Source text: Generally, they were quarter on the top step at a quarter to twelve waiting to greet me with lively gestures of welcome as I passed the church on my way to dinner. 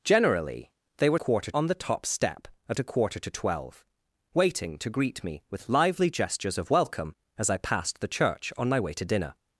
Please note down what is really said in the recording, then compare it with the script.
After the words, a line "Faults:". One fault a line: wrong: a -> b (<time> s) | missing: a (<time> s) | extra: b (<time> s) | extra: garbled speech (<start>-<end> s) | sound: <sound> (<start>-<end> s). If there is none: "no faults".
Generally, they were quarter on the top step at a quarter to twelve waiting to greet me with lively gestures of welcome as I passed the church on my way to dinner.
Faults:
no faults